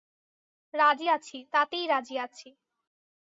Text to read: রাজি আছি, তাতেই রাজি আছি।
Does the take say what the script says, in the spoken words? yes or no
yes